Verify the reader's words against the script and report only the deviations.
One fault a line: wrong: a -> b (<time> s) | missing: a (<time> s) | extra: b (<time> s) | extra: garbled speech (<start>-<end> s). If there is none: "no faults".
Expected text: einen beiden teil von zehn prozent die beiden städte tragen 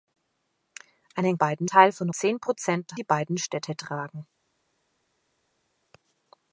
no faults